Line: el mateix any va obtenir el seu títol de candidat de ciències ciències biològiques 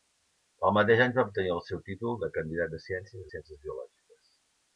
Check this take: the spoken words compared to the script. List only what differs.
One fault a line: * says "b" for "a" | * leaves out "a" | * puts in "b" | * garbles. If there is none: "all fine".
all fine